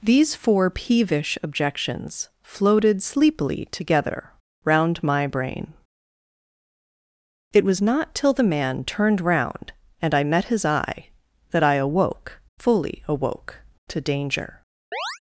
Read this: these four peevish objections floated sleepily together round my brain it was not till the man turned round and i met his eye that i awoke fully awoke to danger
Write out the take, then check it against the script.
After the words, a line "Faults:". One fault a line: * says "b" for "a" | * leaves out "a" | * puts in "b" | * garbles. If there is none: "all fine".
these four peevish objections floated sleepily together round my brain it was not till the man turned round and i met his eye that i awoke fully awoke to danger
Faults:
all fine